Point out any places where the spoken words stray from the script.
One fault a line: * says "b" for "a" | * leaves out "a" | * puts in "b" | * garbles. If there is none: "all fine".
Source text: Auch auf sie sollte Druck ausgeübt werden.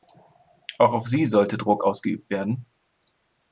all fine